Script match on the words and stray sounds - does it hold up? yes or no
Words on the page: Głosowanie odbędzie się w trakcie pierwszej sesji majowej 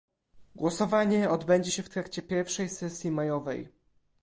yes